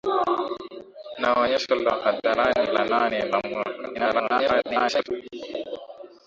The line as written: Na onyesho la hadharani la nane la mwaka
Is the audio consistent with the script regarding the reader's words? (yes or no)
no